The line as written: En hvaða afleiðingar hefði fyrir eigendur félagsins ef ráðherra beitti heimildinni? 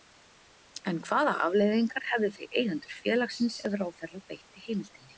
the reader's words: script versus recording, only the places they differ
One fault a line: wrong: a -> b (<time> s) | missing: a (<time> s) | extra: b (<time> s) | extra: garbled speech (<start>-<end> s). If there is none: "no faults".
no faults